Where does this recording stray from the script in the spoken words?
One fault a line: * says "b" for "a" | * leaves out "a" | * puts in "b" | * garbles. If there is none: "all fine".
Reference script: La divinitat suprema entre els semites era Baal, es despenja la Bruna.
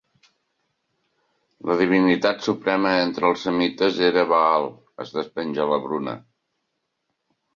all fine